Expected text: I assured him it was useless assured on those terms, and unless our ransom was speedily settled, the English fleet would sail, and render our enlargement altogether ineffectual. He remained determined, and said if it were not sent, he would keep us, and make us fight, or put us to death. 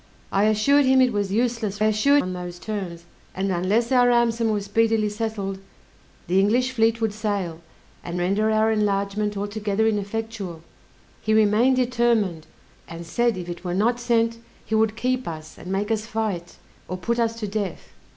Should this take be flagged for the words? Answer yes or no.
no